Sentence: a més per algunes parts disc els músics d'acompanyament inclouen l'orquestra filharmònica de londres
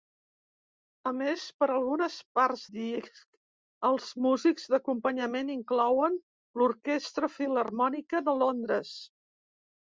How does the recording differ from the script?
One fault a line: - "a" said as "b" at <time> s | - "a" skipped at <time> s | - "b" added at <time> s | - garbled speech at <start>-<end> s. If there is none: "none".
none